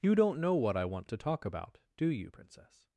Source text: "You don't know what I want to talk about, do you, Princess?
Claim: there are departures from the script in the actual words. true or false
false